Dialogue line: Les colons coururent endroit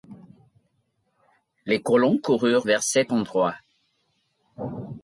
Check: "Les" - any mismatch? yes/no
no